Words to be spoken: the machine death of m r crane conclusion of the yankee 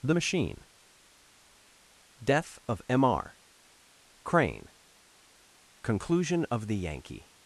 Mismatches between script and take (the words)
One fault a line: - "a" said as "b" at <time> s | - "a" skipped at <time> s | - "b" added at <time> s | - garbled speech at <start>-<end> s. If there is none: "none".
none